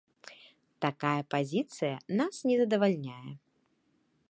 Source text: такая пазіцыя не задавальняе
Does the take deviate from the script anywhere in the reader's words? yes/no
yes